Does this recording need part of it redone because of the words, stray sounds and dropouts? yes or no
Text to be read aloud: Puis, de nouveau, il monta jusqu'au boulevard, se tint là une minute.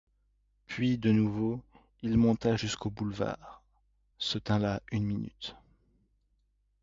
no